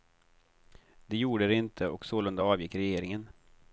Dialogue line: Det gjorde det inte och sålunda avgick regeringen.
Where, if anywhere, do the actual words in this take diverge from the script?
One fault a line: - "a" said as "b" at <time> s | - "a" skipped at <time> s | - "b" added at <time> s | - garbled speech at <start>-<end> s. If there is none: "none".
none